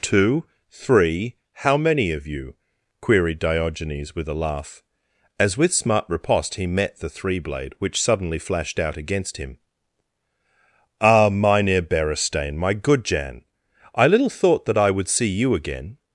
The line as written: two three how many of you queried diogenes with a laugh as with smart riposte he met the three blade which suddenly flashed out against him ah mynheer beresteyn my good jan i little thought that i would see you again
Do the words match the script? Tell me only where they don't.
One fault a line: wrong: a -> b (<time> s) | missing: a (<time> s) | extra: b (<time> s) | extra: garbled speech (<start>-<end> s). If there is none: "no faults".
no faults